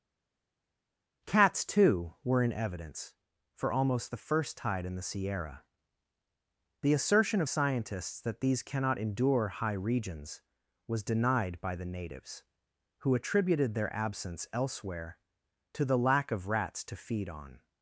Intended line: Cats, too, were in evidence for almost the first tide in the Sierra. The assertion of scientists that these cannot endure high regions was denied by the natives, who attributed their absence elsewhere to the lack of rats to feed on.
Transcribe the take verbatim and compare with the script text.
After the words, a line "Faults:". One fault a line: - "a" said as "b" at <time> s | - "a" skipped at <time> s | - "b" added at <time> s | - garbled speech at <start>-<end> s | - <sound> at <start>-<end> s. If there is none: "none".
Cats, too, were in evidence for almost the first tide in the Sierra. The assertion of scientists that these cannot endure high regions was denied by the natives, who attributed their absence elsewhere to the lack of rats to feed on.
Faults:
none